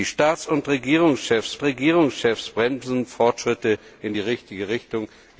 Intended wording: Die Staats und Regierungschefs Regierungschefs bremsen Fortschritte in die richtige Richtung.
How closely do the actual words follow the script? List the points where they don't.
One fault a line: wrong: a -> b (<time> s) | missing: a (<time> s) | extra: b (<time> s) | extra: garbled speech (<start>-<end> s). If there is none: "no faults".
no faults